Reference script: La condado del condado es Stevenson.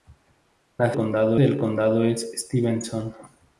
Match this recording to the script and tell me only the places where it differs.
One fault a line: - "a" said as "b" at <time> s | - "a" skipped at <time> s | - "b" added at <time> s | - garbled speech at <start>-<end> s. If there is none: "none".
none